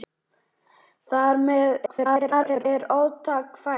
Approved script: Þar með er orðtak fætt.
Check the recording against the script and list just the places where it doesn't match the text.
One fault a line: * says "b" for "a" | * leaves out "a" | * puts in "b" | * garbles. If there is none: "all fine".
* garbles